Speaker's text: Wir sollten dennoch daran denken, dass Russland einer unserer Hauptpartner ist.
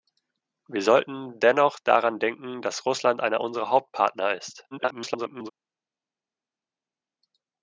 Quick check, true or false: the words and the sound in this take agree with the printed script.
false